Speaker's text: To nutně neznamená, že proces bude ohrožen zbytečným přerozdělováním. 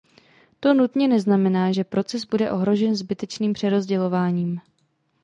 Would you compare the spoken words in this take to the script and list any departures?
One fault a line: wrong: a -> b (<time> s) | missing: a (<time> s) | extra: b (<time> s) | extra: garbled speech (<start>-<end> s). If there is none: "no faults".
no faults